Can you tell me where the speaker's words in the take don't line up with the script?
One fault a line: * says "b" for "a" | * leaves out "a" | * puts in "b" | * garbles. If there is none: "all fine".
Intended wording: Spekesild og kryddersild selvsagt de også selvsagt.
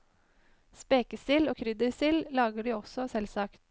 * says "lager" for "selvsagt"